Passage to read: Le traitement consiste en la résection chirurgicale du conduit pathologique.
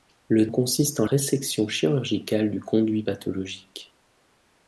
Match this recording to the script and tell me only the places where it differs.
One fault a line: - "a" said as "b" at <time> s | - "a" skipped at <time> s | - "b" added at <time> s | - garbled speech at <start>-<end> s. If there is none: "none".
- "traitement" skipped at 0.5 s
- "la" skipped at 1.1 s